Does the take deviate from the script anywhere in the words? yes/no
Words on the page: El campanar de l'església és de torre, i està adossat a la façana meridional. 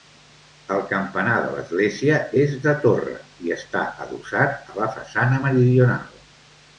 no